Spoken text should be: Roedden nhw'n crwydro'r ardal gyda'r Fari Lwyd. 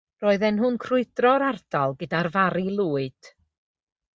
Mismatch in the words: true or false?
false